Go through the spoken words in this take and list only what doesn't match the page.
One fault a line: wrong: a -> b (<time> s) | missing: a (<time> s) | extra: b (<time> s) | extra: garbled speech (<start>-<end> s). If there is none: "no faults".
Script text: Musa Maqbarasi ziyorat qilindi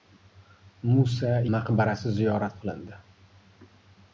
no faults